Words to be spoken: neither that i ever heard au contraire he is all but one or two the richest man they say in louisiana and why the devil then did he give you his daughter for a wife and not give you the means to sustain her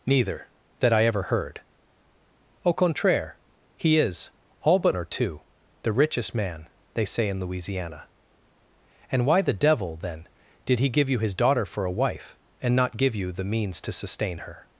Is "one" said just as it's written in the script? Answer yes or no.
no